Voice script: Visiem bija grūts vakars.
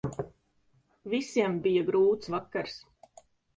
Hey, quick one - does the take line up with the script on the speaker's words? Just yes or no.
yes